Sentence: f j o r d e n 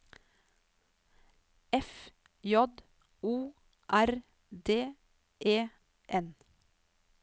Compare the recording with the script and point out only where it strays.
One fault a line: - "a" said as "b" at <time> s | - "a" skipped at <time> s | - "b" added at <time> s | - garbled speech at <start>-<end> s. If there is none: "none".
none